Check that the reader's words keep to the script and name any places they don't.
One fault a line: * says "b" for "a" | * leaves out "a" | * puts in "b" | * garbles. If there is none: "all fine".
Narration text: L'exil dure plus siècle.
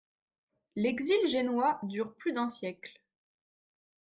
* puts in "génois"
* puts in "d'un"